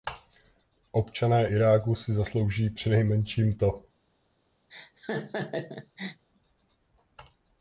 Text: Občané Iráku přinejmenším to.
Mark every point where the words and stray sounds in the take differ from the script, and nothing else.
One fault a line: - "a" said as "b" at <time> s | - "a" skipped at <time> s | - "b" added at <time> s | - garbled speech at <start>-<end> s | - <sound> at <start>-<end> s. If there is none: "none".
- "si zaslouží" added at 2.0 s
- laugh at 4.7-6.2 s